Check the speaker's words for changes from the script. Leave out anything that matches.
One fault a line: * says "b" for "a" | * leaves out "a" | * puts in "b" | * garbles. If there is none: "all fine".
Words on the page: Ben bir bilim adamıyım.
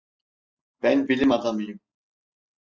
* leaves out "bir"